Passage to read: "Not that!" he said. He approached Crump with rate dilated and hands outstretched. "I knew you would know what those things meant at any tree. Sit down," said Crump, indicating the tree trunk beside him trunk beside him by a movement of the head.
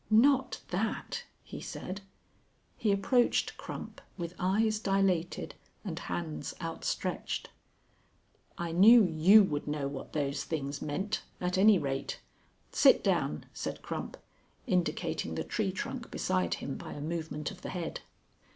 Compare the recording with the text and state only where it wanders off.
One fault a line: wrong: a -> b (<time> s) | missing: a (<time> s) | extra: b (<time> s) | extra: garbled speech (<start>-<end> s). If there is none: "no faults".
wrong: rate -> eyes (4.4 s)
wrong: tree -> rate (11.8 s)
missing: trunk beside him (16.8 s)